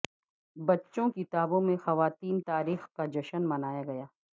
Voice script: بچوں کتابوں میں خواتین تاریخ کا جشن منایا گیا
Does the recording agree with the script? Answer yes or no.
yes